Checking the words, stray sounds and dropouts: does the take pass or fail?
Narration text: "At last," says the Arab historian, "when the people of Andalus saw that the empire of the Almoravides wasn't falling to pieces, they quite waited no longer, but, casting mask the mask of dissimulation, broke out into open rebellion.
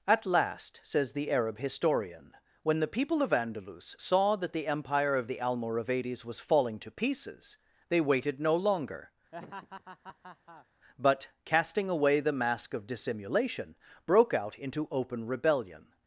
fail